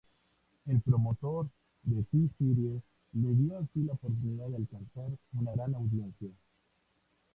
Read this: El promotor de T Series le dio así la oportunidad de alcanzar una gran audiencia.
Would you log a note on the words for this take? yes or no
no